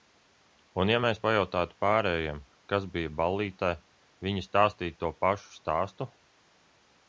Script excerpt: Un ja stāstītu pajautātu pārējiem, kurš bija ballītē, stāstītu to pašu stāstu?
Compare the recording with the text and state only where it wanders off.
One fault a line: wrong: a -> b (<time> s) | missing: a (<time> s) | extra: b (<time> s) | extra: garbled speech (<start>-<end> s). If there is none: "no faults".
wrong: stāstītu -> mēs (1.0 s)
wrong: kurš -> kas (2.7 s)
extra: viņi (4.3 s)